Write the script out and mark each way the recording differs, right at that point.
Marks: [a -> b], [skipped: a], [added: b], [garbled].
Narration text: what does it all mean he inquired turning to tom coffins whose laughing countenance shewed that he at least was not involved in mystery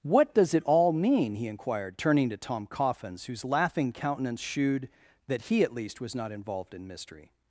what does it all mean he inquired turning to tom coffins whose laughing countenance shewed that he at least was not involved in mystery